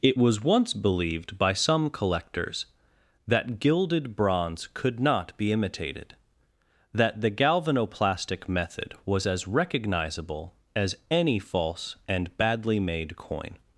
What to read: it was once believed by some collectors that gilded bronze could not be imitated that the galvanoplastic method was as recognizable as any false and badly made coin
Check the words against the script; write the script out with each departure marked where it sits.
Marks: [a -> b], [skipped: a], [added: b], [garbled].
it was once believed by some collectors that gilded bronze could not be imitated that the galvanoplastic method was as recognizable as any false and badly made coin